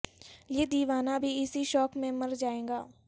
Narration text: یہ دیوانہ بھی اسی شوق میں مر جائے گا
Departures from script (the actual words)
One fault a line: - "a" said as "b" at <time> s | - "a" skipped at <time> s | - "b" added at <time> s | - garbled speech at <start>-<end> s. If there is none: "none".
none